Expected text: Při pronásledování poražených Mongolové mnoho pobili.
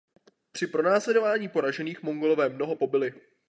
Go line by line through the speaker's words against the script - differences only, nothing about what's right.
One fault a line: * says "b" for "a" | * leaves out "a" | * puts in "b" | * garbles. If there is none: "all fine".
all fine